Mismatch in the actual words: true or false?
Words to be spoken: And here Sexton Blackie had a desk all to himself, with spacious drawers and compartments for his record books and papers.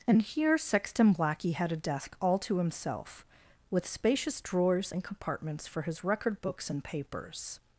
false